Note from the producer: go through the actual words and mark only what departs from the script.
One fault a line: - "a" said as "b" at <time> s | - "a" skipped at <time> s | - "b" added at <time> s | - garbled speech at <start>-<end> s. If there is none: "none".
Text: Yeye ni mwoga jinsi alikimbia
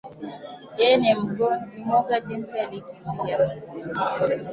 none